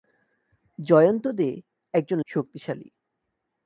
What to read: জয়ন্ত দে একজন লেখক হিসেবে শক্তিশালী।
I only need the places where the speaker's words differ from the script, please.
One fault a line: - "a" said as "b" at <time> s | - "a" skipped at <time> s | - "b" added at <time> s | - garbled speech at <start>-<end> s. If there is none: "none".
- "লেখক হিসেবে" skipped at 2.2 s